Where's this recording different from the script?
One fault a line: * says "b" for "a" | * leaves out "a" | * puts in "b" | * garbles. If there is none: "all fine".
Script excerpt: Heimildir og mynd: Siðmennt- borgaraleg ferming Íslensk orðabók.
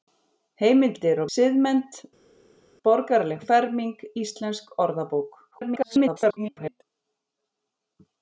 * leaves out "mynd"
* garbles